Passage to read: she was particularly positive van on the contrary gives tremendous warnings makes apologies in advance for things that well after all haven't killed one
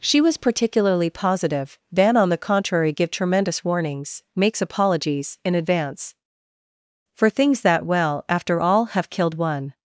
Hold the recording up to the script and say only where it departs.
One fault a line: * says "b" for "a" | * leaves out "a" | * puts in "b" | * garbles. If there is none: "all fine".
* says "give" for "gives"
* says "have" for "haven't"